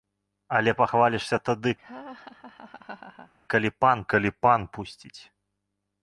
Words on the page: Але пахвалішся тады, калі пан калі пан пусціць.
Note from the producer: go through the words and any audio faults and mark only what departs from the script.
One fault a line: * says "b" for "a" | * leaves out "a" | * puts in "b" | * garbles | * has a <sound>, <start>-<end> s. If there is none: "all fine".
* has a laugh, 1.8-3.3 s